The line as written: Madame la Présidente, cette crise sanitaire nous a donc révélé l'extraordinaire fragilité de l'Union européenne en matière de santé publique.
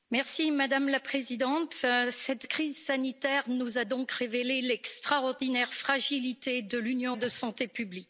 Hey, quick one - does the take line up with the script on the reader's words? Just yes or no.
no